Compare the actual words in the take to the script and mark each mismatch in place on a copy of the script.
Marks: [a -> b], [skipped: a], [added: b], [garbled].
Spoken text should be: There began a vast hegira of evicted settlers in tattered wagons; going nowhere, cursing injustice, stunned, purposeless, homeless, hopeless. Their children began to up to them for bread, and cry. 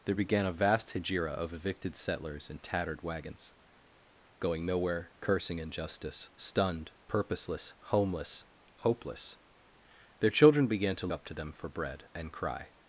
There began a vast hegira of evicted settlers in tattered wagons; going nowhere, cursing injustice, stunned, purposeless, homeless, hopeless. Their children began to up to them for bread, and cry.